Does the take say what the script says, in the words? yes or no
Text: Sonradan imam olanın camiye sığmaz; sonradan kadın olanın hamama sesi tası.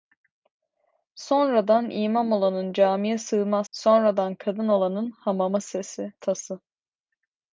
yes